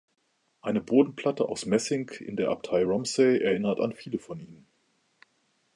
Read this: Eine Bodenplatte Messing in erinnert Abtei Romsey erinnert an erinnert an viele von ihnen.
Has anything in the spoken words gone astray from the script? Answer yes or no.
yes